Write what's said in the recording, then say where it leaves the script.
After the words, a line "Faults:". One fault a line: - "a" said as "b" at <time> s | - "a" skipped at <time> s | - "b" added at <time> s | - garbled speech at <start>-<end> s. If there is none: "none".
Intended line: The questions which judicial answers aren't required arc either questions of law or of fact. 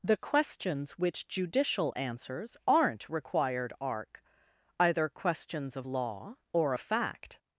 The questions which judicial answers aren't required arc either questions of law or of fact.
Faults:
none